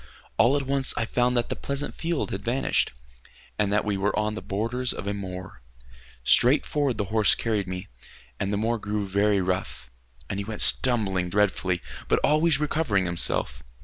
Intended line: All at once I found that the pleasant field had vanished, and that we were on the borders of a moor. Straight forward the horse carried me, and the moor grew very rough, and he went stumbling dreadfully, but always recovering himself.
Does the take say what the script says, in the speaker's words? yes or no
yes